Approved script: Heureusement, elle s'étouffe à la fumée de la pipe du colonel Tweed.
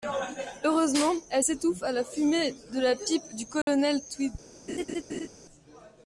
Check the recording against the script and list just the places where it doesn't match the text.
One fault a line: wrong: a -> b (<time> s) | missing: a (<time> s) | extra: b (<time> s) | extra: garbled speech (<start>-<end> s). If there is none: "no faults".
no faults